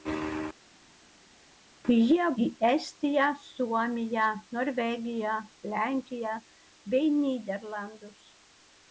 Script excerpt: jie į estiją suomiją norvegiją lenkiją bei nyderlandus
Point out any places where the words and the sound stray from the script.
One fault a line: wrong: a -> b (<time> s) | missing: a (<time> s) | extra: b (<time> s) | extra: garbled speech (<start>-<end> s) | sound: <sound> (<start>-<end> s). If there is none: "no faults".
no faults